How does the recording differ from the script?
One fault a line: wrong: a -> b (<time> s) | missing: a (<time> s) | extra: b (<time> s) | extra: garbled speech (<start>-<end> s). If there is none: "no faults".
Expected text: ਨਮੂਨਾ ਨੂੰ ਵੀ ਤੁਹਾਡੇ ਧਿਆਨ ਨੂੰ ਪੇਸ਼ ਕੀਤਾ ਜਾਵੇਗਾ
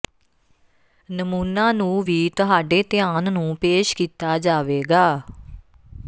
no faults